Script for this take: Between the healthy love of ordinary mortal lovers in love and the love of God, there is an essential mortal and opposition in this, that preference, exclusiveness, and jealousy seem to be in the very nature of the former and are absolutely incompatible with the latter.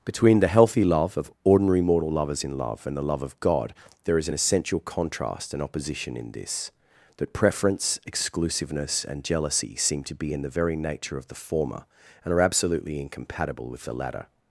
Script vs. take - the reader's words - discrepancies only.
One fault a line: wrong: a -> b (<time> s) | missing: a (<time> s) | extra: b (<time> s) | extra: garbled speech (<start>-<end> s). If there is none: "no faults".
wrong: mortal -> contrast (4.8 s)